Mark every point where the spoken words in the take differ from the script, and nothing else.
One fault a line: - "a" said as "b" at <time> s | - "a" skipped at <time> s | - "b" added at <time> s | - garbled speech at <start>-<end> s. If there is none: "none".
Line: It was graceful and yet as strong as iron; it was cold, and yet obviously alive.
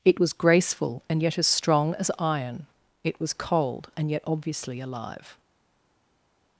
none